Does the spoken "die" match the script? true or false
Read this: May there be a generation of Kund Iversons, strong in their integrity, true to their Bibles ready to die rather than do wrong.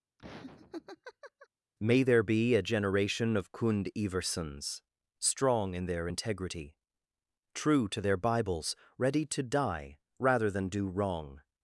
true